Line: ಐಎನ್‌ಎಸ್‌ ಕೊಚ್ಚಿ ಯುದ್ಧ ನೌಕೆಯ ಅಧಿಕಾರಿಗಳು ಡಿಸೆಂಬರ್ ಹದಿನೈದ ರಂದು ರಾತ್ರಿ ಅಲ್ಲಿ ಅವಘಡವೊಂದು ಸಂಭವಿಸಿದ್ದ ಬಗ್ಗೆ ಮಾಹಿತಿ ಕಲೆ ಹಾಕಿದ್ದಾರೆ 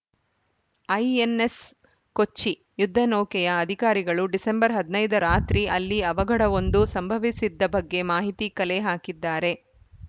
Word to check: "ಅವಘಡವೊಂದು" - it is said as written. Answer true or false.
true